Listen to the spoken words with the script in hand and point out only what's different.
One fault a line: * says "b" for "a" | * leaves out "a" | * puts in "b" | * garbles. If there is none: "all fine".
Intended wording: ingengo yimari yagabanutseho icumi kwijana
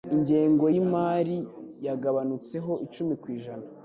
all fine